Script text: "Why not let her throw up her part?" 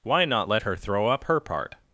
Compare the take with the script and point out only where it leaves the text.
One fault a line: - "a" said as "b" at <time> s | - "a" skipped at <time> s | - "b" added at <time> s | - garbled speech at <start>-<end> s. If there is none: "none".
none